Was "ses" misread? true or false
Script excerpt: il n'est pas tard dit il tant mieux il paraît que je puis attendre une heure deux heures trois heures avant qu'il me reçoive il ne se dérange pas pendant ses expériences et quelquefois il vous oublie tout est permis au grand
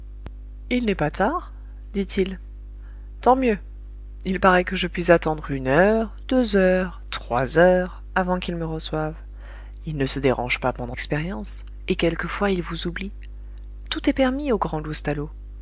true